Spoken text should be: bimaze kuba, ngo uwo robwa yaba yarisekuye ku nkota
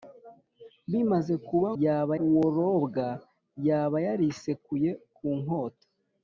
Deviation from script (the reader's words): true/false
true